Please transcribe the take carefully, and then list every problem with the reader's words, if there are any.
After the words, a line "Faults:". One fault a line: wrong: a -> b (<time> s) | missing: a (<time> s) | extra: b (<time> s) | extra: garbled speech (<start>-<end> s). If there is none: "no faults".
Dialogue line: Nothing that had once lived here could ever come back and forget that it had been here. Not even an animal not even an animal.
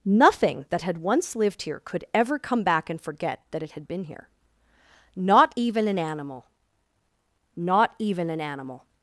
Nothing that had once lived here could ever come back and forget that it had been here. Not even an animal not even an animal.
Faults:
no faults